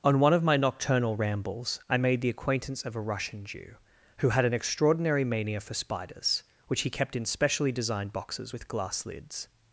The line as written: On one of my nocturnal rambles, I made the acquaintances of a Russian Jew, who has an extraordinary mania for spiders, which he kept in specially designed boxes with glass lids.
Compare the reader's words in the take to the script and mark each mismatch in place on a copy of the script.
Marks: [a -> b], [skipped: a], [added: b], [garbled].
On one of my nocturnal rambles, I made the [acquaintances -> acquaintance] of a Russian Jew, who [has -> had] an extraordinary mania for spiders, which he kept in specially designed boxes with glass lids.